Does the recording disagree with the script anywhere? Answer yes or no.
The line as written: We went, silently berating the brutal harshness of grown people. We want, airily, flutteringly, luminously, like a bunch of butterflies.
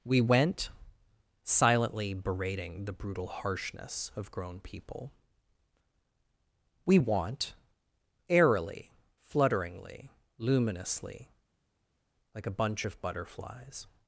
no